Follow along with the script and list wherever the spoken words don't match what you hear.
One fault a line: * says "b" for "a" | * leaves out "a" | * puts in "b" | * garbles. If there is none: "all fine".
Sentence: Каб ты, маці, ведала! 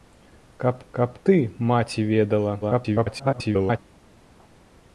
* puts in "каб"
* garbles